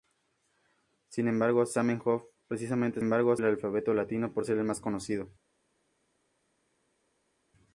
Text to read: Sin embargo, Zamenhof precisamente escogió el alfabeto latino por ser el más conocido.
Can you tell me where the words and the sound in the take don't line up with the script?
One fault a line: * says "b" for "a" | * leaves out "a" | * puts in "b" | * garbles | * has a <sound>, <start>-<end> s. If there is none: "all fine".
* says "embargo" for "escogió"